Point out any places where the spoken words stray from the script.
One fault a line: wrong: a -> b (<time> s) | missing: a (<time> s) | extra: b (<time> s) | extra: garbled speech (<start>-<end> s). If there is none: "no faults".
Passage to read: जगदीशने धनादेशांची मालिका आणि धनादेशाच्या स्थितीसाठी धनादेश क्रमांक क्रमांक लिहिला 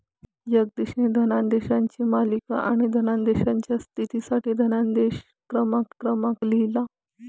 no faults